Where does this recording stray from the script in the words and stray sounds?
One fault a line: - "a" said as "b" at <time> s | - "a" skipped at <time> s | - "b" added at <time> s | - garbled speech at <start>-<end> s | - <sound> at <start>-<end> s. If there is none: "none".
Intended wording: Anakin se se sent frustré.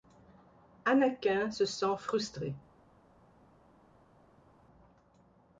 - "se" skipped at 1.6 s